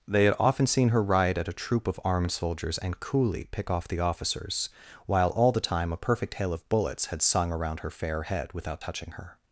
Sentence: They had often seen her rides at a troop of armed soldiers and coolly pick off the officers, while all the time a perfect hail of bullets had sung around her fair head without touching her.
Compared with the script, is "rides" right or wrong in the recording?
wrong